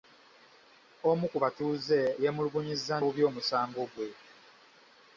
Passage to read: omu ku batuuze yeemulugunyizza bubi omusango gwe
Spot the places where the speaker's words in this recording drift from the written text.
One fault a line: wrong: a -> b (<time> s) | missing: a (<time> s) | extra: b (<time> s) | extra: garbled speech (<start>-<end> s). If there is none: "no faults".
no faults